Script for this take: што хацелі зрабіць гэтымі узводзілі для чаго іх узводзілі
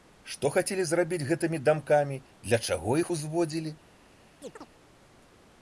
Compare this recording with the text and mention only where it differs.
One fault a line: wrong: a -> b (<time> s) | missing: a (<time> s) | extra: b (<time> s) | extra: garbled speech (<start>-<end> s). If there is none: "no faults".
wrong: узводзілі -> дамкамі (1.7 s)